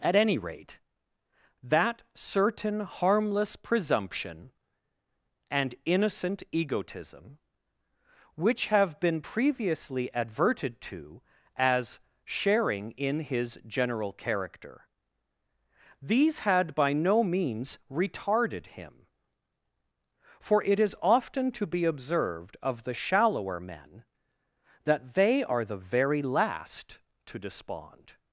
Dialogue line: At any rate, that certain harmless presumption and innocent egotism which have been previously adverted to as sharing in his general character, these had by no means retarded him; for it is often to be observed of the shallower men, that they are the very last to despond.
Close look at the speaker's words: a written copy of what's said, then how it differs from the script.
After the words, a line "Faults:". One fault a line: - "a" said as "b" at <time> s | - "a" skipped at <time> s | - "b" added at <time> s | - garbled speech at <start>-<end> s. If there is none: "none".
At any rate, that certain harmless presumption and innocent egotism which have been previously adverted to as sharing in his general character, these had by no means retarded him; for it is often to be observed of the shallower men, that they are the very last to despond.
Faults:
none